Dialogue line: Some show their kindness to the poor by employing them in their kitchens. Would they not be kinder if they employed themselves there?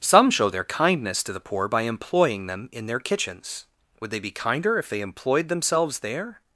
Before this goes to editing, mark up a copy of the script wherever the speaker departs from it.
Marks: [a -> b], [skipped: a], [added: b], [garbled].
Some show their kindness to the poor by employing them in their kitchens. Would they [skipped: not] be kinder if they employed themselves there?